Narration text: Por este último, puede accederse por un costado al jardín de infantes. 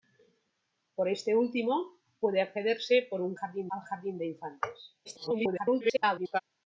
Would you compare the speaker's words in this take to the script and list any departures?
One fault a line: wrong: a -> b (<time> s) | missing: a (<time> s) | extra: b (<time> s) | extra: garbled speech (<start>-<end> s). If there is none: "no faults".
wrong: costado -> jardín (3.3 s)
extra: garbled speech (5.0-6.4 s)